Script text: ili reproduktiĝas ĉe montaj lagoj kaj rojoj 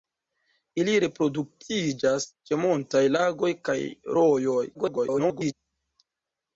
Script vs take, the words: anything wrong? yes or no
yes